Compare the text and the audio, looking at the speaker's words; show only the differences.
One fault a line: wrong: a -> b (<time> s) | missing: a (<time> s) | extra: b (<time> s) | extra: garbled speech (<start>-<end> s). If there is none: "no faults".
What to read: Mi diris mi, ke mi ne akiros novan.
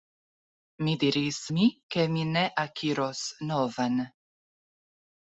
no faults